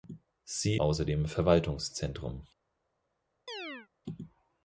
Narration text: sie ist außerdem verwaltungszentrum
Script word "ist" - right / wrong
wrong